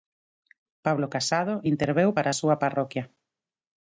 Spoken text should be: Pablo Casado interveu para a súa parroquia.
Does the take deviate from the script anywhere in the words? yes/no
no